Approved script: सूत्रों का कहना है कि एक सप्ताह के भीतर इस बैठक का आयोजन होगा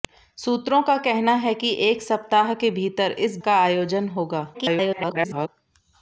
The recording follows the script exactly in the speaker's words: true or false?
false